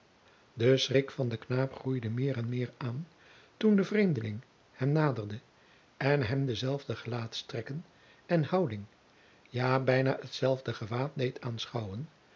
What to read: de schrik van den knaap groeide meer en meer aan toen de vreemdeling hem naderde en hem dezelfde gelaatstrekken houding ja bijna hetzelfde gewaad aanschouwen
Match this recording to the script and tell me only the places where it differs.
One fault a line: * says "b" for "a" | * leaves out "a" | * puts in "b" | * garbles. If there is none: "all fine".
* puts in "en"
* puts in "deed"